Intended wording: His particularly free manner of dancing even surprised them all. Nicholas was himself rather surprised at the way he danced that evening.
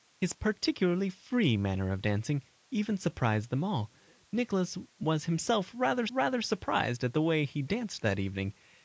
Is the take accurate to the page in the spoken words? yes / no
no